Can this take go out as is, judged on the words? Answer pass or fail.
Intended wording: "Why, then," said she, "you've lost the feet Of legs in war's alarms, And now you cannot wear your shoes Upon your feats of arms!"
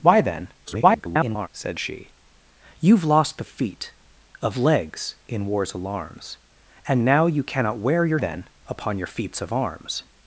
fail